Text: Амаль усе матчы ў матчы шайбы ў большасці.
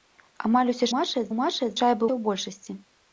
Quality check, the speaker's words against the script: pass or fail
pass